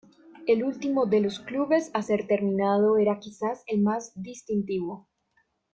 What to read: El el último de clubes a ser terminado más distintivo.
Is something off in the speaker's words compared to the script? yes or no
yes